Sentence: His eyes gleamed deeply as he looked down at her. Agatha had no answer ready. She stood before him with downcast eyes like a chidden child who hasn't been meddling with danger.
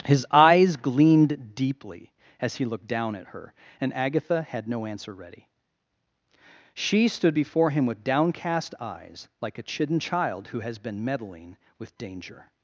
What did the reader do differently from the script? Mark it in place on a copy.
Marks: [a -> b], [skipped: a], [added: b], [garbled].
His eyes gleamed deeply as he looked down at her. [added: And] Agatha had no answer ready. She stood before him with downcast eyes like a chidden child who [hasn't -> has] been meddling with danger.